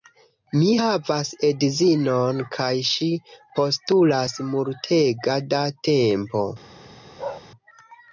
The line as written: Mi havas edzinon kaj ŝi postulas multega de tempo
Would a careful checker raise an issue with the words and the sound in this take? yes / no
yes